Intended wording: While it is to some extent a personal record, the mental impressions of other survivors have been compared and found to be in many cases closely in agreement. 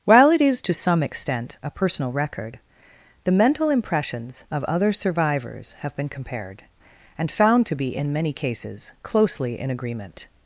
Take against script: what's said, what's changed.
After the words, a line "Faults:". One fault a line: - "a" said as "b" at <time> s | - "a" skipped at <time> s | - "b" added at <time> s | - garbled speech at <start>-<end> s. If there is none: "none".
While it is to some extent a personal record, the mental impressions of other survivors have been compared and found to be in many cases closely in agreement.
Faults:
none